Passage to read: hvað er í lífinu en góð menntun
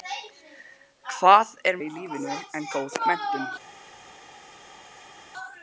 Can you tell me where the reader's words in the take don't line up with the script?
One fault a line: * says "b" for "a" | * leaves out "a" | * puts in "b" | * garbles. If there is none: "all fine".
all fine